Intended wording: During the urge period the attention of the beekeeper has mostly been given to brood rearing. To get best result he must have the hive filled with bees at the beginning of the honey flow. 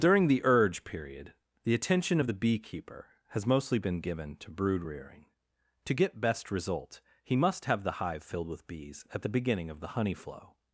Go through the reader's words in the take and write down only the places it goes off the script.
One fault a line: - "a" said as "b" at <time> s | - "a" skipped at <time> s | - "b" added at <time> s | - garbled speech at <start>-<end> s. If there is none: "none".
none